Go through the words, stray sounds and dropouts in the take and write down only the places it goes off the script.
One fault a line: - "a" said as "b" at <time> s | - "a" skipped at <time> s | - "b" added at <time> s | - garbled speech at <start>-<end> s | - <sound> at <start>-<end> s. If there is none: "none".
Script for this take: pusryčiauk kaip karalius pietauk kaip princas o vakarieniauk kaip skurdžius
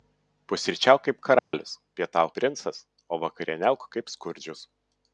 - dropout at 1.4-1.5 s
- "kaip" skipped at 2.3 s